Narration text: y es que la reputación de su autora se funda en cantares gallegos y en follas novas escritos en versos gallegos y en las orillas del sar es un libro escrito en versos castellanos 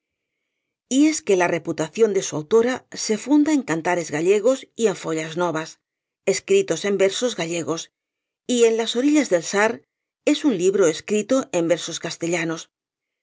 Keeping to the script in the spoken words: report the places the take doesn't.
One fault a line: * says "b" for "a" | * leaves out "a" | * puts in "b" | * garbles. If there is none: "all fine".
all fine